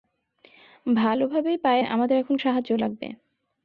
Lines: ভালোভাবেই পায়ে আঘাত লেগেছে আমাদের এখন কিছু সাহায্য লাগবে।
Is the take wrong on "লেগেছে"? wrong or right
wrong